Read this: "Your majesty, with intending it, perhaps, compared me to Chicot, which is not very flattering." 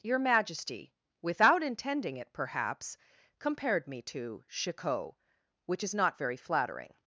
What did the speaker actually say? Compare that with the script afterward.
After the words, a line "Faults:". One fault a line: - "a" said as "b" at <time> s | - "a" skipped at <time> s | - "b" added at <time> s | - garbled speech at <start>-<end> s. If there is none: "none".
"Your majesty, without intending it, perhaps, compared me to Chicot, which is not very flattering."
Faults:
- "with" said as "without" at 1.2 s